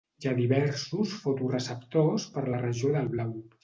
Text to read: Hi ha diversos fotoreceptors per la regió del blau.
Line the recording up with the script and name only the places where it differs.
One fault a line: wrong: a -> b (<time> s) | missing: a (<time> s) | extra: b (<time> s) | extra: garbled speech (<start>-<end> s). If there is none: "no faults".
no faults